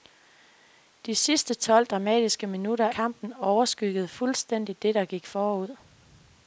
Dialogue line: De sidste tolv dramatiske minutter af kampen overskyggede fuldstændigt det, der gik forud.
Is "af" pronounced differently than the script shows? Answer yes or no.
yes